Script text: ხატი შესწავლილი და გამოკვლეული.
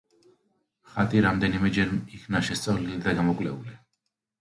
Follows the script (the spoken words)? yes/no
no